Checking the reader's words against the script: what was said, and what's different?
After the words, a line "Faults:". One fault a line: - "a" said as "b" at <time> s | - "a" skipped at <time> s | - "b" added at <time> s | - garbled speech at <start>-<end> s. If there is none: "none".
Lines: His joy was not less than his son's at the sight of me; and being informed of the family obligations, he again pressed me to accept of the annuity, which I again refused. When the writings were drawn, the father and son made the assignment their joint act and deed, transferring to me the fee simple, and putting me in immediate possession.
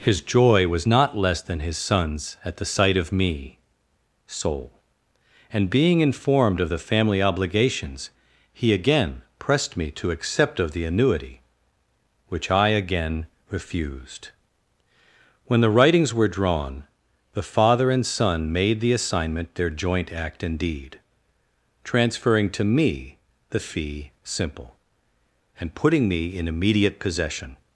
His joy was not less than his son's at the sight of me; soul and being informed of the family obligations, he again pressed me to accept of the annuity, which I again refused. When the writings were drawn, the father and son made the assignment their joint act and deed, transferring to me the fee simple, and putting me in immediate possession.
Faults:
- "soul" added at 4.3 s